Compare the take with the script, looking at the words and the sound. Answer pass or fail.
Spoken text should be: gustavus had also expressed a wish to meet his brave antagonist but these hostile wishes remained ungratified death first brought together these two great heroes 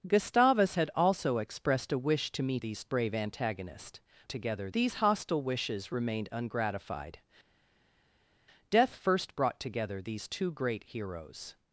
fail